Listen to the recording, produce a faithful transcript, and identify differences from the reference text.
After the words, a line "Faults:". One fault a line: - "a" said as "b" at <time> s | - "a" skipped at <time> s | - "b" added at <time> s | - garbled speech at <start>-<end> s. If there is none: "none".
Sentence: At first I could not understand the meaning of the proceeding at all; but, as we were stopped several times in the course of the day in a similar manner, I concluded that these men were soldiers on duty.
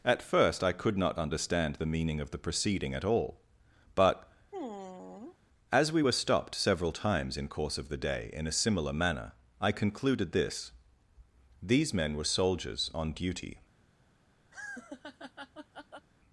At first I could not understand the meaning of the proceeding at all; but, as we were stopped several times in course of the day in a similar manner, I concluded this these men were soldiers on duty.
Faults:
- "the" skipped at 7.5 s
- "that" said as "this" at 10.3 s